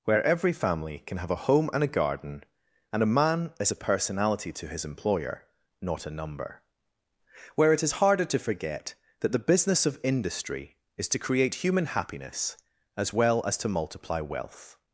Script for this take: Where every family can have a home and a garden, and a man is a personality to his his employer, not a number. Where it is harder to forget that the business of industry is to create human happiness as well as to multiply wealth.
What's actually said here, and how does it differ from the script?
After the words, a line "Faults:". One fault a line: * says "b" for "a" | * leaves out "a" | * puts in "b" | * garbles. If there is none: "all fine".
Where every family can have a home and a garden, and a man is a personality to his employer, not a number. Where it is harder to forget that the business of industry is to create human happiness as well as to multiply wealth.
Faults:
* leaves out "his"